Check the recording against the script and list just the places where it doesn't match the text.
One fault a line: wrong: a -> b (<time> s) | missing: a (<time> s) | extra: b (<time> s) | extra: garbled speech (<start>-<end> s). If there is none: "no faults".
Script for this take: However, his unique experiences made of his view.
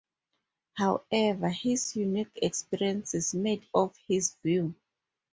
no faults